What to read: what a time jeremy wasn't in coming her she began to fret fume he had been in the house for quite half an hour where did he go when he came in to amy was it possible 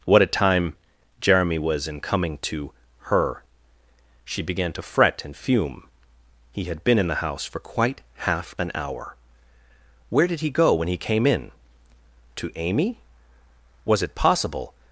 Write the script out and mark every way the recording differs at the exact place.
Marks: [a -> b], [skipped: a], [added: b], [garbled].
what a time jeremy [wasn't -> was] in coming [added: to] her she began to fret [added: and] fume he had been in the house for quite half an hour where did he go when he came in to amy was it possible